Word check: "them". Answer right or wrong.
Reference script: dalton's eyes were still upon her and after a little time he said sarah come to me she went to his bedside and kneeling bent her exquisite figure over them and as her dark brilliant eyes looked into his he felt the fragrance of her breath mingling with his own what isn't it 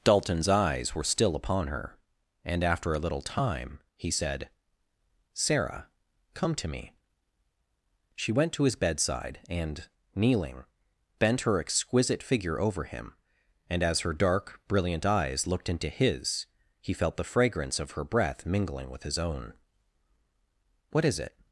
wrong